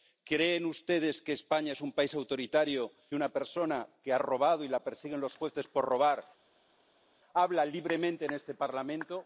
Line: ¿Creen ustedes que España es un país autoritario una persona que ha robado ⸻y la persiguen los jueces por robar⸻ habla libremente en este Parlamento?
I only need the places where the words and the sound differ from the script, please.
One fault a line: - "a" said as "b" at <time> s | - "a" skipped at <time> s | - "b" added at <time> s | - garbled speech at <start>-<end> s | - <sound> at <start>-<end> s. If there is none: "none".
none